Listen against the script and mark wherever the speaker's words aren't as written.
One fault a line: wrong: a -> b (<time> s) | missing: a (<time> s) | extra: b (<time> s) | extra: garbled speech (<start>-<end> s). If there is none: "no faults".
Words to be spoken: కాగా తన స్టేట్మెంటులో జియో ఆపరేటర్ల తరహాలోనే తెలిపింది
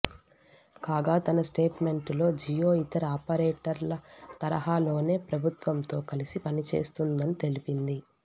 extra: ఇతర (2.8 s)
extra: ప్రభుత్వంతో కలిసి పనిచేస్తుందని (5.3 s)